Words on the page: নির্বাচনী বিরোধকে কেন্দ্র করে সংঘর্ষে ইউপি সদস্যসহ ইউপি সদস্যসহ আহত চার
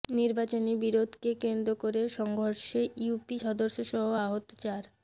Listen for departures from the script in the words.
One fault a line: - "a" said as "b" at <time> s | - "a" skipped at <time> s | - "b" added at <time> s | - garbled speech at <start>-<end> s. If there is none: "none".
- "ইউপি সদস্যসহ" skipped at 4.1 s